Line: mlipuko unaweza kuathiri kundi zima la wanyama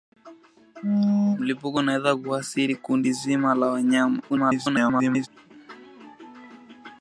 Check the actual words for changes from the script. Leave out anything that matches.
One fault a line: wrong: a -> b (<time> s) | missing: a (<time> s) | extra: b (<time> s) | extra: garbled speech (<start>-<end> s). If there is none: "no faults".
extra: garbled speech (4.3-5.3 s)